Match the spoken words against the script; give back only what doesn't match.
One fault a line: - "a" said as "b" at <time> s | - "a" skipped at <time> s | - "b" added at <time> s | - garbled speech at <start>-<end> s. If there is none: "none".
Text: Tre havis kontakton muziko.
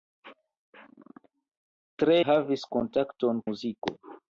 none